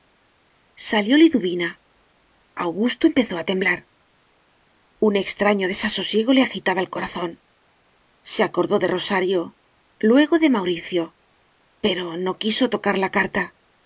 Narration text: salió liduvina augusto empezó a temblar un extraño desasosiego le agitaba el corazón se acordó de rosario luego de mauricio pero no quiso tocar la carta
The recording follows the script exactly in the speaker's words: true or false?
true